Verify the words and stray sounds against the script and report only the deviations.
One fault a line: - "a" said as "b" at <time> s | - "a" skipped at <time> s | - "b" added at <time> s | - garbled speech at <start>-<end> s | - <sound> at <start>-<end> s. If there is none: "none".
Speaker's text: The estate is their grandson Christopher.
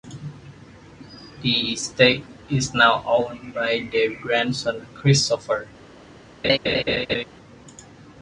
- "now owned by" added at 2.7 s
- laugh at 6.4-7.2 s